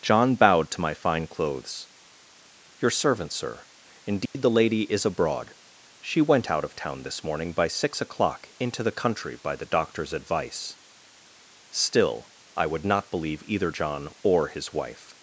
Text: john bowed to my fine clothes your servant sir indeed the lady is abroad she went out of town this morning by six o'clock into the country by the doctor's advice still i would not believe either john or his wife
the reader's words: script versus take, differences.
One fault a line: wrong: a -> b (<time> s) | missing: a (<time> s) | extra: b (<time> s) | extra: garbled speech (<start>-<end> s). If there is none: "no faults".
no faults